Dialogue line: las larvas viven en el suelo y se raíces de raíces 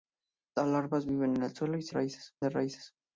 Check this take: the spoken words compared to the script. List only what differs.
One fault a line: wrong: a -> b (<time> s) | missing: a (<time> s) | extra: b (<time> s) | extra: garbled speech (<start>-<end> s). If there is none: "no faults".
no faults